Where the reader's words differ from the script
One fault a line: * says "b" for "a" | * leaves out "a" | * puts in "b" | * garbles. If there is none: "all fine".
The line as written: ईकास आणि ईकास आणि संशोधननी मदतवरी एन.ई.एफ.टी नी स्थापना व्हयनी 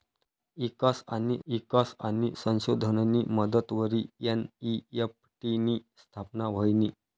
all fine